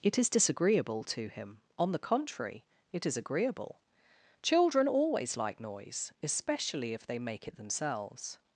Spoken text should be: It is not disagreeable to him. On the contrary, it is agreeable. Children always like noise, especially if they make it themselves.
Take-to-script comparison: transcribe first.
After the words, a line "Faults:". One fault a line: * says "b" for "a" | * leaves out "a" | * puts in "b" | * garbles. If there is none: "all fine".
It is disagreeable to him. On the contrary, it is agreeable. Children always like noise, especially if they make it themselves.
Faults:
* leaves out "not"